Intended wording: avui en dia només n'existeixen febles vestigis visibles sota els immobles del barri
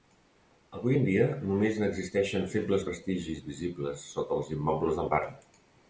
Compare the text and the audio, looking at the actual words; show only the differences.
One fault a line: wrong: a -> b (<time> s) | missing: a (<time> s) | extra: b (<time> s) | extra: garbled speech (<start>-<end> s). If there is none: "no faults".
no faults